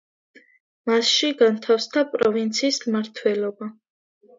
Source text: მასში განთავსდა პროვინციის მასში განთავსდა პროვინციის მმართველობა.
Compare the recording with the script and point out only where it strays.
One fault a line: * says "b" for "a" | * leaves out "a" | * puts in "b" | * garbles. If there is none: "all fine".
* leaves out "მასში განთავსდა პროვინციის"